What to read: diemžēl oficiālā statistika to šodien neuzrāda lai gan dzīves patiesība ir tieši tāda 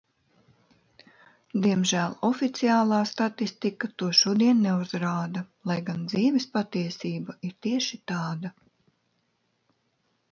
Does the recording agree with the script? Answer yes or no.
yes